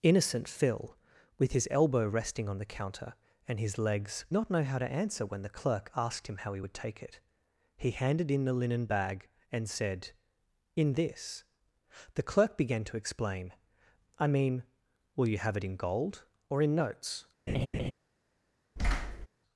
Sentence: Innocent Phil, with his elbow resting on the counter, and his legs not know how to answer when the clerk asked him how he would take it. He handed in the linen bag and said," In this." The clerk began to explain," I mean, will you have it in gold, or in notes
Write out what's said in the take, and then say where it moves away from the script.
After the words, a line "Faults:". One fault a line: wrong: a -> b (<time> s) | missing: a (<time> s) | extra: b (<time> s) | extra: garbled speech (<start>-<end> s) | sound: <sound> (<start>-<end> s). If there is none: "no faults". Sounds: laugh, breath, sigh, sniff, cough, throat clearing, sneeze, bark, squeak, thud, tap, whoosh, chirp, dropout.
Innocent Phil, with his elbow resting on the counter, and his legs not know how to answer when the clerk asked him how he would take it. He handed in the linen bag and said," In this." The clerk began to explain," I mean, will you have it in gold, or in notes
Faults:
sound: laugh (17.5-17.9 s)
sound: thud (18.8-19.3 s)